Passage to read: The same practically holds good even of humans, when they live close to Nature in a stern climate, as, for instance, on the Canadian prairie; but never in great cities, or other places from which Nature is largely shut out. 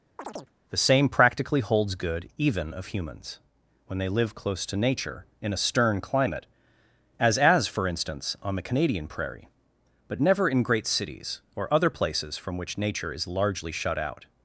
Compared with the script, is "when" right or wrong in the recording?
right